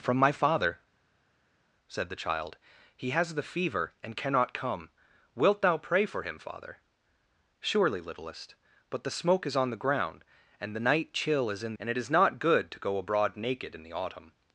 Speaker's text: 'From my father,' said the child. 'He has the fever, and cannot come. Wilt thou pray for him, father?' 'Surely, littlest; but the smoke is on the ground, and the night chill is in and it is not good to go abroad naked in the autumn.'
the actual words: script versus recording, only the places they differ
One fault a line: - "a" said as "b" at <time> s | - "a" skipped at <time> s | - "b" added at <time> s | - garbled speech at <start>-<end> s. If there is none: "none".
none